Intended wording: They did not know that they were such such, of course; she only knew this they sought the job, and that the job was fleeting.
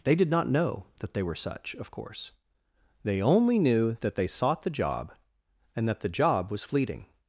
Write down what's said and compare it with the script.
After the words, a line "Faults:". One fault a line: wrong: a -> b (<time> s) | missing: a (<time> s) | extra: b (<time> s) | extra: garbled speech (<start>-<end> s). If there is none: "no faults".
They did not know that they were such, of course; they only knew that they sought the job, and that the job was fleeting.
Faults:
missing: such (1.8 s)
wrong: she -> they (3.0 s)
wrong: this -> that (4.0 s)